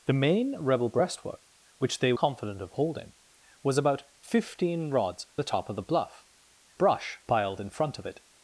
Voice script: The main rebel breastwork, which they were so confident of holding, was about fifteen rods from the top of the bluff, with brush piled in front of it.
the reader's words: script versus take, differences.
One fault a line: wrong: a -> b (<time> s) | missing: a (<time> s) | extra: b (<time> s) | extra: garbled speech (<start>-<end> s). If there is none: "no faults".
missing: were so (2.1 s)
missing: from (5.3 s)
missing: with (6.3 s)